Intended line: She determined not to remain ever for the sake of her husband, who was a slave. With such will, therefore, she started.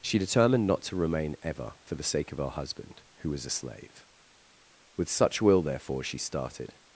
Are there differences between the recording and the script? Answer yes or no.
no